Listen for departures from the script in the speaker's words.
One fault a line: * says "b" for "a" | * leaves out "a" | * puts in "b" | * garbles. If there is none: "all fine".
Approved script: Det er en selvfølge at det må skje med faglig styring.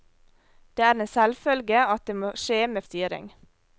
* leaves out "faglig"